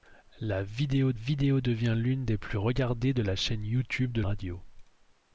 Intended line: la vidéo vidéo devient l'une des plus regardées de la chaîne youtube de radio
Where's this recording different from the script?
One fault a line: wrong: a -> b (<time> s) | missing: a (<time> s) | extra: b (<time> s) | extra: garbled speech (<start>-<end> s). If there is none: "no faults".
no faults